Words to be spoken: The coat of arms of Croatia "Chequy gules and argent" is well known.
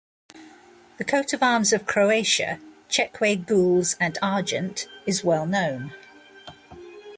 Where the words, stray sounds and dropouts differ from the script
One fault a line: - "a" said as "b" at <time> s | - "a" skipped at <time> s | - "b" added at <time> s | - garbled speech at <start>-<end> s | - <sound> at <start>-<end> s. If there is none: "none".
none